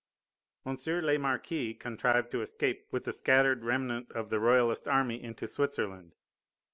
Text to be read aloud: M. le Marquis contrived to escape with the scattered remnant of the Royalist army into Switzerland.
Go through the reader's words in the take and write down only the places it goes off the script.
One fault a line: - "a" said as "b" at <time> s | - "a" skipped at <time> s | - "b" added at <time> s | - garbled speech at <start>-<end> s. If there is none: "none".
none